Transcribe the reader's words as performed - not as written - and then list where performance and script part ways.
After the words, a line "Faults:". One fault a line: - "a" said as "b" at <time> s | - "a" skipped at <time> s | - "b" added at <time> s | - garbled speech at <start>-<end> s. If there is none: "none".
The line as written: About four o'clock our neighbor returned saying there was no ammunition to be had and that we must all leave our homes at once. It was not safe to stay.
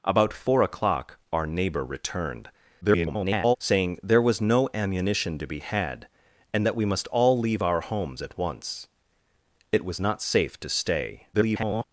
About four o'clock our neighbor returned [garbled] saying there was no ammunition to be had and that we must all leave our homes at once. It was not safe to stay. [garbled]
Faults:
- garbled speech at 2.8-3.6 s
- garbled speech at 11.3-11.8 s